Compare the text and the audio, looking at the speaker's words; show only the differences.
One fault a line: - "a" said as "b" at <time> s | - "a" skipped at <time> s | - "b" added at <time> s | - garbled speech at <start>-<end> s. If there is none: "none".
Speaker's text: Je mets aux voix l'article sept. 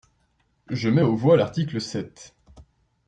none